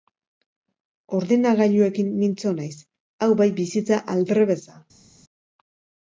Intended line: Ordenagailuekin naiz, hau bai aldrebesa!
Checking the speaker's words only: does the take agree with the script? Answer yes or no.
no